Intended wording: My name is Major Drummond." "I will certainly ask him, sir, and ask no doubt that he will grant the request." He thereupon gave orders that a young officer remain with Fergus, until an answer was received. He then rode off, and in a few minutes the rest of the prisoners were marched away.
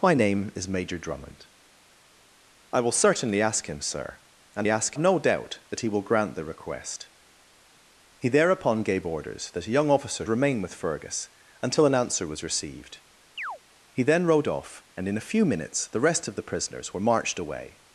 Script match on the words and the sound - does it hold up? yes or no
no